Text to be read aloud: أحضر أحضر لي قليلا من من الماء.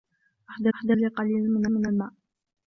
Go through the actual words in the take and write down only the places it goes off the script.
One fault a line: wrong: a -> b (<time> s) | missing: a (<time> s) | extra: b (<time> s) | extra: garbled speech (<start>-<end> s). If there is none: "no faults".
no faults